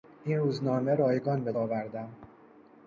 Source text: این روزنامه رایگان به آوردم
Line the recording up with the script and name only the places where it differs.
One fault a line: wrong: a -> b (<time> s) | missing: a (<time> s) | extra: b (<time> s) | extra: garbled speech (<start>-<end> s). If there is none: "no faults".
no faults